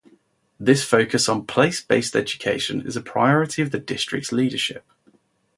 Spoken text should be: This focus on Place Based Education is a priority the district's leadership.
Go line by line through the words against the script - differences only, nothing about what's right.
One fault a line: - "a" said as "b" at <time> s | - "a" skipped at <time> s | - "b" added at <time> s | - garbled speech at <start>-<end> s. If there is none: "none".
- "of" added at 3.6 s